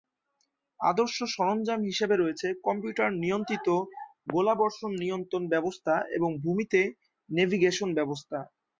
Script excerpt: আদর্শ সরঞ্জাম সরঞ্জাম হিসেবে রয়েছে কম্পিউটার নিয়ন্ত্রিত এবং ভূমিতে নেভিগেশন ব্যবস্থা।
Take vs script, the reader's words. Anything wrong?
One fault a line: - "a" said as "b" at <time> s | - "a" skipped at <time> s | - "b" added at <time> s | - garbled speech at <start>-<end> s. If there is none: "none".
- "সরঞ্জাম" skipped at 1.8 s
- "গোলাবর্ষণ নিয়ন্ত্রণ ব্যবস্থা" added at 4.3 s